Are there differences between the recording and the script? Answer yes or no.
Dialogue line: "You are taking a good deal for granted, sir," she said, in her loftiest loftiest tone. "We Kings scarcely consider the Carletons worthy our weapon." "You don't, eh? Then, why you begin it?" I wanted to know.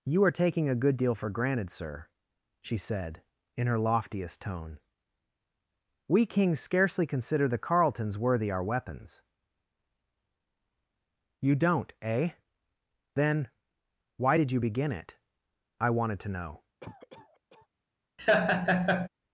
yes